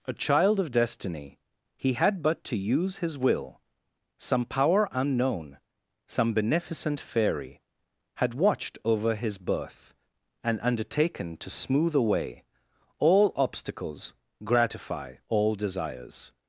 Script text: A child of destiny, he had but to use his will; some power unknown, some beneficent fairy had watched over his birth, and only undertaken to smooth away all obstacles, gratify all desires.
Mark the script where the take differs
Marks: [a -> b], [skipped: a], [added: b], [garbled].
A child of destiny, he had but to use his will; some power unknown, some beneficent fairy had watched over his birth, and [skipped: only] undertaken to smooth away all obstacles, gratify all desires.